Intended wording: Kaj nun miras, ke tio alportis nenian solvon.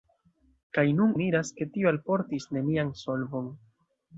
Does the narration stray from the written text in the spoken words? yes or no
no